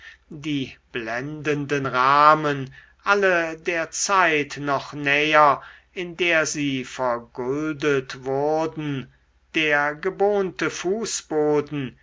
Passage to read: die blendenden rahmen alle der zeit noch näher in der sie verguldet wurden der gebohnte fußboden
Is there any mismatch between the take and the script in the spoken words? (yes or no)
no